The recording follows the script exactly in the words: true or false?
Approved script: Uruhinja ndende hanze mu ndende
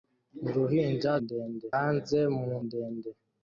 true